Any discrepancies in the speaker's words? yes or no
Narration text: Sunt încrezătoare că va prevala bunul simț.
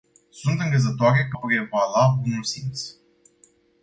yes